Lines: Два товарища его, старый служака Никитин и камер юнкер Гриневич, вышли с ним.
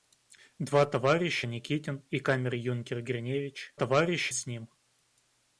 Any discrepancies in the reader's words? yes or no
yes